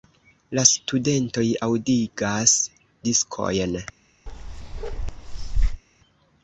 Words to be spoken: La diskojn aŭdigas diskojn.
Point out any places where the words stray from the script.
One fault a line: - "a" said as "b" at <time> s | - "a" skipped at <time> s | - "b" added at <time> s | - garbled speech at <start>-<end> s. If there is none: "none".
- "diskojn" said as "studentoj" at 0.7 s